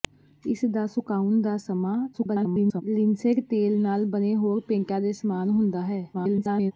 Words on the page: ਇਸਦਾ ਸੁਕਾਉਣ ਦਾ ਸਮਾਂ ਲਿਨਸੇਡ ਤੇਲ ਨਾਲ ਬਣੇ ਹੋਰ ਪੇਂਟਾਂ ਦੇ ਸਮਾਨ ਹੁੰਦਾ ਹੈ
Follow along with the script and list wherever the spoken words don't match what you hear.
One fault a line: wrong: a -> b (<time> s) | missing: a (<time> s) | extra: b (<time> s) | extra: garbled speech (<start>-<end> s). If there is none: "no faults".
extra: garbled speech (2.1-2.8 s)
extra: garbled speech (6.1-6.7 s)